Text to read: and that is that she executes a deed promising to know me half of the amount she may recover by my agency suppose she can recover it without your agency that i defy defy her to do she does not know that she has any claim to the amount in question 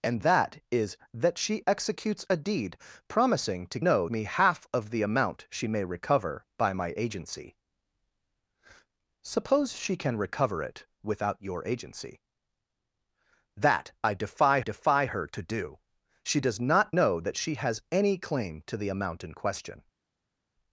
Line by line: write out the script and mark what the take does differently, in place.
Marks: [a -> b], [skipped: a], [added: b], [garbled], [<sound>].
and that is that she executes a deed promising to know me half of the amount she may recover by my agency suppose she can recover it without your agency that i defy defy her to do she does not know that she has any claim to the amount in question